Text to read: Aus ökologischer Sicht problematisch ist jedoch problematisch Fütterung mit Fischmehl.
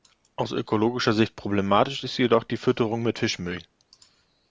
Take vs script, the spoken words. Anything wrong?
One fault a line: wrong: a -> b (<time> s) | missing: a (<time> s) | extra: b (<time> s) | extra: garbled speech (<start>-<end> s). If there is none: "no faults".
wrong: problematisch -> die (2.4 s)